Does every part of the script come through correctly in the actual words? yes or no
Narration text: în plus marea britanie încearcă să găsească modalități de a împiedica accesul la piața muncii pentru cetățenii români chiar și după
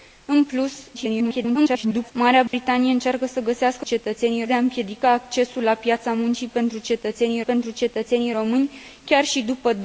no